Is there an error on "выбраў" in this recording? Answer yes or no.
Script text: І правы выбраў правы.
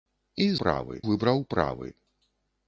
no